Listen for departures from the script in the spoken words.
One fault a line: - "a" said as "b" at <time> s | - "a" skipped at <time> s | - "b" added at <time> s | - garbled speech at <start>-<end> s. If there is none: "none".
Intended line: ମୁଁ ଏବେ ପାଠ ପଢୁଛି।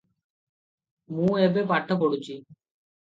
none